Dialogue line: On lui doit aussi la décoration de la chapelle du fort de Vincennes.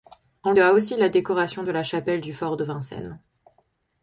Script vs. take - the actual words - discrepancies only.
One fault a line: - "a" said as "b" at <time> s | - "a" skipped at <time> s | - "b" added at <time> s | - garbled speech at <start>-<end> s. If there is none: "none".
- "lui" skipped at 0.5 s